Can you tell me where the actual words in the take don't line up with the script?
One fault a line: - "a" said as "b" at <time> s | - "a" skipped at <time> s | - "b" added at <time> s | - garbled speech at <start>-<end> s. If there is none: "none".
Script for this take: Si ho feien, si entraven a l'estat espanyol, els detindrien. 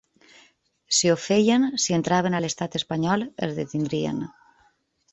none